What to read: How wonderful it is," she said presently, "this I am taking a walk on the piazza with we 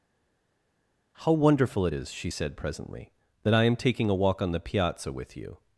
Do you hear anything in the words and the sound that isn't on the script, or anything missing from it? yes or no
yes